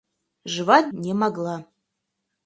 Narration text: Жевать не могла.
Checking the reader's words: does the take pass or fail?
pass